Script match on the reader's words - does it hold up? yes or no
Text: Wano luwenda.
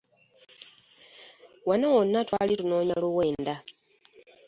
no